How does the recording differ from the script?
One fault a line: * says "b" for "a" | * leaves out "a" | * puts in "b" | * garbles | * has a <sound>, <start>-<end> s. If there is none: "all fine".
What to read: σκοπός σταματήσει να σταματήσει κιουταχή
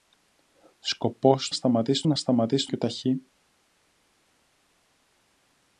all fine